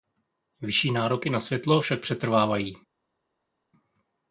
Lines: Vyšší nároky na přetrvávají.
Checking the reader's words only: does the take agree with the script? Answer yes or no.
no